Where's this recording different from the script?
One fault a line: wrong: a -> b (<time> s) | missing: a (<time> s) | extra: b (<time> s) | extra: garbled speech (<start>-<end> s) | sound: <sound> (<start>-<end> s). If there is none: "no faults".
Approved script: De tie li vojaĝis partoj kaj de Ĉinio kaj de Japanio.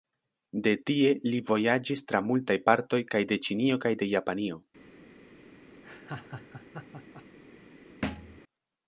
extra: tra multaj (2.1 s)
sound: laugh (5.8-7.2 s)
sound: thud (8.0-8.4 s)